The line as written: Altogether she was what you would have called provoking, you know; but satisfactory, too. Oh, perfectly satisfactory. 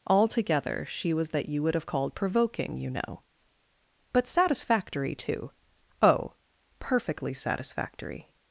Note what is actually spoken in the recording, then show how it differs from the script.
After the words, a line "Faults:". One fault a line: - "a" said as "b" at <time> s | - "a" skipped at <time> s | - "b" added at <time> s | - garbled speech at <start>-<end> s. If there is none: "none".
Altogether she was that you would have called provoking, you know; but satisfactory, too. Oh, perfectly satisfactory.
Faults:
- "what" said as "that" at 1.3 s